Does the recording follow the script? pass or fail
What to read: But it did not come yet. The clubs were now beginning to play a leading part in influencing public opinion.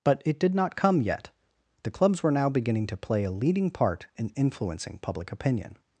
pass